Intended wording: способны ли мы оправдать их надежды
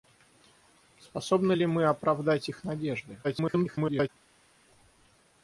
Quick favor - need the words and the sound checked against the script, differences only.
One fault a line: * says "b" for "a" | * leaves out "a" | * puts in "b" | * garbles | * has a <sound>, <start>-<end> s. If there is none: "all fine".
* garbles